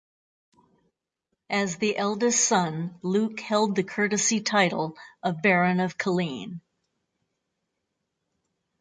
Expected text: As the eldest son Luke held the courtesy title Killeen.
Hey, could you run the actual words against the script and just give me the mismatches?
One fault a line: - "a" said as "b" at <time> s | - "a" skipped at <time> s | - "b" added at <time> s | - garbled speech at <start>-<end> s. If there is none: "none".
- "of Baron of" added at 5.2 s